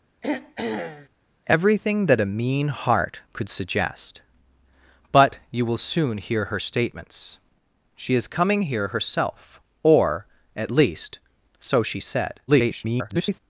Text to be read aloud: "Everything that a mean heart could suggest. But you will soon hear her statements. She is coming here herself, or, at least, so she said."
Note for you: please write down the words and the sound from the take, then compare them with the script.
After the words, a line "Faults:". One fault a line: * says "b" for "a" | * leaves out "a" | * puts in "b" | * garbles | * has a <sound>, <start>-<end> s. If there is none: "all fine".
"Everything that a mean heart could suggest. But you will soon hear her statements. She is coming here herself, or, at least, so she said." [garbled]
Faults:
* has a throat clearing, 0.2-1.1 s
* garbles